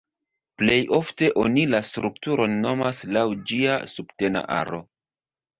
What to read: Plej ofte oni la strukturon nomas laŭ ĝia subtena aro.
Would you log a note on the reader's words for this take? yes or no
no